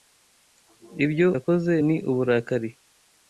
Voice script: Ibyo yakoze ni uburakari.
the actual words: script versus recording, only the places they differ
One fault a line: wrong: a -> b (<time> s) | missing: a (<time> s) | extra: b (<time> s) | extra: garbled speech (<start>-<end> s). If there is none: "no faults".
no faults